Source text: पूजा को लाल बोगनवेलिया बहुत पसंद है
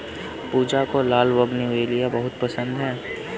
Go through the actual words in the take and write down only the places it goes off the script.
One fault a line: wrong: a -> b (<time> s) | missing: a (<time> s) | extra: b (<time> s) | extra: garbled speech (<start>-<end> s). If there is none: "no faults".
no faults